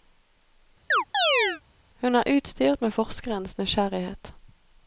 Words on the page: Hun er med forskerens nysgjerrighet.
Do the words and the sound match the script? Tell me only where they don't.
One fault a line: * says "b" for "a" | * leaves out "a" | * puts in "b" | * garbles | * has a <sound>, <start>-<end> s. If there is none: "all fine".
* has a chirp, 0.9-1.6 s
* puts in "utstyrt"